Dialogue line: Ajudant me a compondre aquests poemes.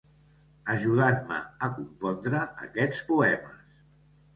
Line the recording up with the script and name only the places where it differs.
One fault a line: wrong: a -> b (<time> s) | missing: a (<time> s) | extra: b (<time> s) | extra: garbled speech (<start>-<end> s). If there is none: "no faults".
no faults